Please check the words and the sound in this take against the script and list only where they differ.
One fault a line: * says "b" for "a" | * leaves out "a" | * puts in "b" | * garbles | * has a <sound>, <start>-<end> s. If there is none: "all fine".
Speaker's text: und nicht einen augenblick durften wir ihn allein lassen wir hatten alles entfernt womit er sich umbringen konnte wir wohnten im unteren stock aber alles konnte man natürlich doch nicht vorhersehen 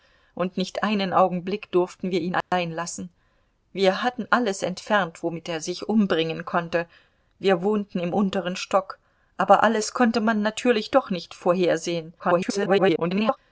* has a dropout, 2.4-2.5 s
* garbles